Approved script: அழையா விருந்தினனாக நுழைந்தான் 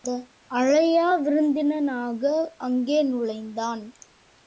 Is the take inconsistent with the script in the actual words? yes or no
yes